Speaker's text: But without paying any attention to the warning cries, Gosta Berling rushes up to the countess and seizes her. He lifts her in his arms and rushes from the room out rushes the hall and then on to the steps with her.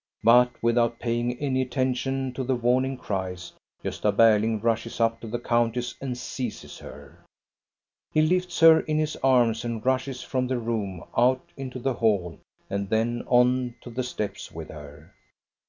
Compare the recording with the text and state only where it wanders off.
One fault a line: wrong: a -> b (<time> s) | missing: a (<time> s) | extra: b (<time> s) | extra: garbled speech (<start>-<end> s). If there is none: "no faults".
wrong: rushes -> into (11.6 s)